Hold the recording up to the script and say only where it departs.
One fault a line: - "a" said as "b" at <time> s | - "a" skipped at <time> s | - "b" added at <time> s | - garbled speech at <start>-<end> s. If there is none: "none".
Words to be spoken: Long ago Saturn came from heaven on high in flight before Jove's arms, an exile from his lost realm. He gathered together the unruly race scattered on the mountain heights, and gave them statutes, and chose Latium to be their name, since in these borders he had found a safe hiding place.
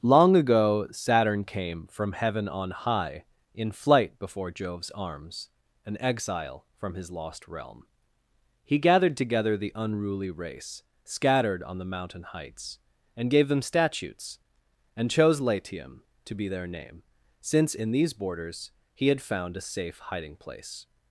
none